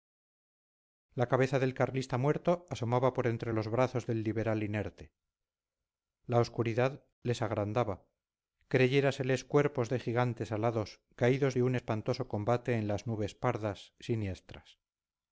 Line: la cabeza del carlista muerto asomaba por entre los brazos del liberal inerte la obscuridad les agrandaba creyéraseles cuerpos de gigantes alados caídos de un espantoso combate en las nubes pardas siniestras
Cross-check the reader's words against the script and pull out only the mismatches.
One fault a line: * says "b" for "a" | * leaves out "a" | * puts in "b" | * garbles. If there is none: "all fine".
all fine